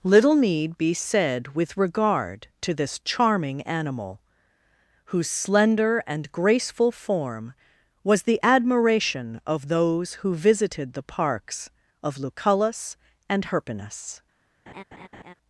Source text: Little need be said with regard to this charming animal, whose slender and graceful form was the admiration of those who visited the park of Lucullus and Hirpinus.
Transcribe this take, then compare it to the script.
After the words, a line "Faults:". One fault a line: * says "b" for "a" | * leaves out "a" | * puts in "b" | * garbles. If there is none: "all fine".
Little need be said with regard to this charming animal, whose slender and graceful form was the admiration of those who visited the parks of Lucullus and Hirpinus.
Faults:
* says "parks" for "park"